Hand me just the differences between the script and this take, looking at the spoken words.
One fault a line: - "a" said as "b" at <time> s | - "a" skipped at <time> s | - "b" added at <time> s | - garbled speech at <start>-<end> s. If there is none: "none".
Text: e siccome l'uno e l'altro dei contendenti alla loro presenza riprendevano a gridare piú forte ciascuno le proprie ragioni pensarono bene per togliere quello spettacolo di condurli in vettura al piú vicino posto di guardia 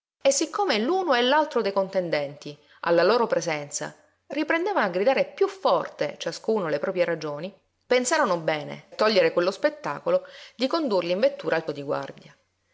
- "per" skipped at 8.8 s
- "piú vicino posto" skipped at 11.6 s